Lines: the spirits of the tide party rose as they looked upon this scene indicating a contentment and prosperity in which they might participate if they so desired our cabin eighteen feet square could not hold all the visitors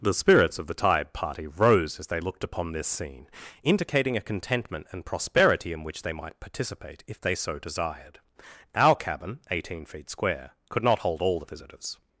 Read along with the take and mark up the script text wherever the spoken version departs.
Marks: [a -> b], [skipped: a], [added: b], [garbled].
the spirits of the tide party rose as they looked upon this scene indicating a contentment and prosperity in which they might participate if they so desired our cabin eighteen feet square could not hold all the visitors